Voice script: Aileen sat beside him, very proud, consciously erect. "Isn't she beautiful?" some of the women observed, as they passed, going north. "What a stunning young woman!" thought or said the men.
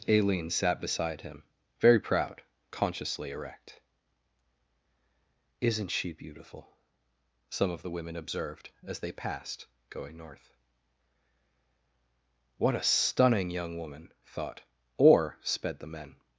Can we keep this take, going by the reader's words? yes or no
no